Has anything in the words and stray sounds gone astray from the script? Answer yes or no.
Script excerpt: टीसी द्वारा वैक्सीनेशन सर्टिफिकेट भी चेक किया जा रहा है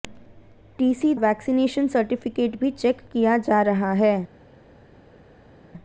yes